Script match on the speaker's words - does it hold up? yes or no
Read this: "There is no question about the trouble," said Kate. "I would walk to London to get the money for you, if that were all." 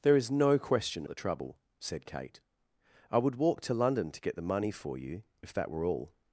no